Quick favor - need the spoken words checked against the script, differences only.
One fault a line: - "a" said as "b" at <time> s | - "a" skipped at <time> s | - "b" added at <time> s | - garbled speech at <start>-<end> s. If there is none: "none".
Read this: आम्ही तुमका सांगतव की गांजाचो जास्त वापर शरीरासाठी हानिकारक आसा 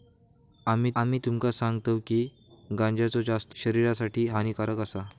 - "आम्ही" added at 1.0 s
- "वापर" skipped at 3.6 s